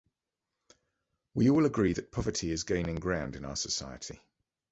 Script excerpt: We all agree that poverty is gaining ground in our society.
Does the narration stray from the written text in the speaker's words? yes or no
no